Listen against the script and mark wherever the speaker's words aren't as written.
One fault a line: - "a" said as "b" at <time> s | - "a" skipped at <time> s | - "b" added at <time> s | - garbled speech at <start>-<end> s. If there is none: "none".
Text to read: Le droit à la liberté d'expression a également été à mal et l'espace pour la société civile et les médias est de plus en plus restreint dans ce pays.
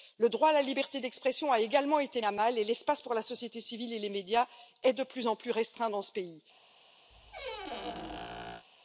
none